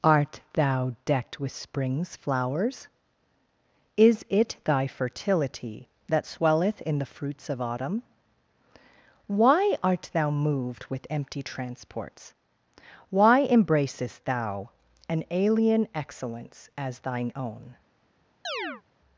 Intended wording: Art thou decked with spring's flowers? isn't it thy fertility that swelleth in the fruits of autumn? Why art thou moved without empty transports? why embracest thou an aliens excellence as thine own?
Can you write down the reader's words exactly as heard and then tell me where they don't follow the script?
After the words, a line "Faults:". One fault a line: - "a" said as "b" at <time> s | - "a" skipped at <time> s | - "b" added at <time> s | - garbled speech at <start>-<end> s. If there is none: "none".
Art thou decked with spring's flowers? is it thy fertility that swelleth in the fruits of autumn? Why art thou moved with empty transports? why embracest thou an alien excellence as thine own?
Faults:
- "isn't" said as "is" at 4.0 s
- "without" said as "with" at 10.9 s
- "aliens" said as "alien" at 15.3 s